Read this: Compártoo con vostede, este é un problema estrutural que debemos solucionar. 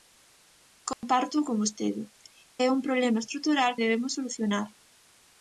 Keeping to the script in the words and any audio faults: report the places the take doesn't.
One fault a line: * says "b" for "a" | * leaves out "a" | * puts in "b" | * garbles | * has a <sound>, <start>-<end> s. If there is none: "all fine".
* has a dropout, 0.9-1.0 s
* leaves out "este"
* leaves out "que"